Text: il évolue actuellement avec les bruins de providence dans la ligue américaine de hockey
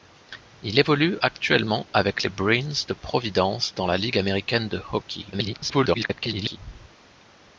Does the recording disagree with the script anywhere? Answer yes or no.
yes